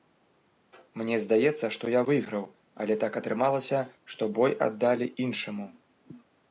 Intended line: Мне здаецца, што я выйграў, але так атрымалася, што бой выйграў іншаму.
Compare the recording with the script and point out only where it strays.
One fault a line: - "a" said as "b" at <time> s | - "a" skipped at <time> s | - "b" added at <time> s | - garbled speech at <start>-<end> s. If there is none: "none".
- "выйграў" said as "аддалі" at 4.7 s